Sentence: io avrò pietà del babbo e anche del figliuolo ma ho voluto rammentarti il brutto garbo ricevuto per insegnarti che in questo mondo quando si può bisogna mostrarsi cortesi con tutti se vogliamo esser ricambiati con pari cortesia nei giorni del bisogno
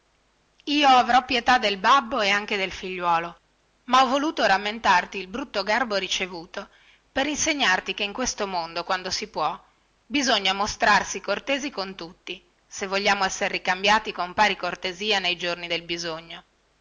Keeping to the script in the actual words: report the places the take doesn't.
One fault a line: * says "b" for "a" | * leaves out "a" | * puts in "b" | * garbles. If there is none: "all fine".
all fine